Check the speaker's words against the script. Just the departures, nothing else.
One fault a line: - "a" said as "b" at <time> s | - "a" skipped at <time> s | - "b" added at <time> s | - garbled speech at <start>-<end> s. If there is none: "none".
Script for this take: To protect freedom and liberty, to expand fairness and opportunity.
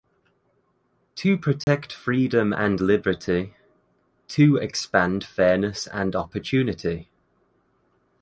none